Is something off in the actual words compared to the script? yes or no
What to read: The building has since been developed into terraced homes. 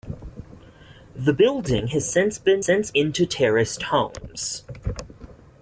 yes